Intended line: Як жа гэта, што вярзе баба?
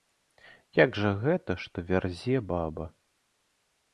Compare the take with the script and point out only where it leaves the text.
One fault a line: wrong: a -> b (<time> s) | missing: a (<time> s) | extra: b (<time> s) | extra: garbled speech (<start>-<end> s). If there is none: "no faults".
no faults